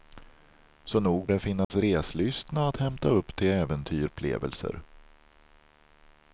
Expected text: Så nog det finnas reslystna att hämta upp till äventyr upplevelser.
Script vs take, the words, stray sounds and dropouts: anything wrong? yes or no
yes